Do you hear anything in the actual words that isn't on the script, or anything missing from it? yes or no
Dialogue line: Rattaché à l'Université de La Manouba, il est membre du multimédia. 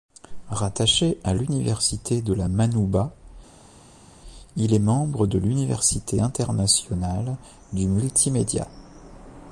yes